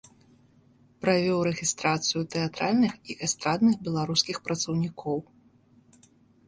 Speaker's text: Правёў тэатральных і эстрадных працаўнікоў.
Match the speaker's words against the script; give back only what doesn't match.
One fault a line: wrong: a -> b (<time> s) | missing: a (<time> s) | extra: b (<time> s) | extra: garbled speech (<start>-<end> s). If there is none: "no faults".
extra: рэгістрацыю (1.5 s)
extra: беларускіх (3.9 s)